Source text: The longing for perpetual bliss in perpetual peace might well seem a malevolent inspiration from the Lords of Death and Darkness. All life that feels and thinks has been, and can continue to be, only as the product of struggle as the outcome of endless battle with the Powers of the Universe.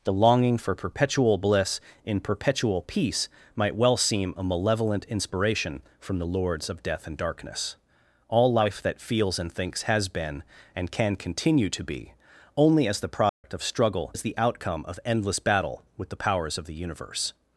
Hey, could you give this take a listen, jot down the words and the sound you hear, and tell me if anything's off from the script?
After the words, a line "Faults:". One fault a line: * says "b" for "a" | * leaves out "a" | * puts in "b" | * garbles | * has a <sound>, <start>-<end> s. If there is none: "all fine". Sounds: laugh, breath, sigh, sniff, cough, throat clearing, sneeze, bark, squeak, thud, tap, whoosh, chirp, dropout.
The longing for perpetual bliss in perpetual peace might well seem a malevolent inspiration from the Lords of Death and Darkness. All life that feels and thinks has been, and can continue to be, only as the product of struggle as the outcome of endless battle with the Powers of the Universe.
Faults:
* has a dropout, 13.3-13.4 s